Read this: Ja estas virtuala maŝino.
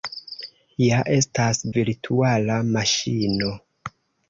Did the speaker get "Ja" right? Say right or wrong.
right